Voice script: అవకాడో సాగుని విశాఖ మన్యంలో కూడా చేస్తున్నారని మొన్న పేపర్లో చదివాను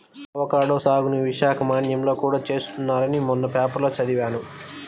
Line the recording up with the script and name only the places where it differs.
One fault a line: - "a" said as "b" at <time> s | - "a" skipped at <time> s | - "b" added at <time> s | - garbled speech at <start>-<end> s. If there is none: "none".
none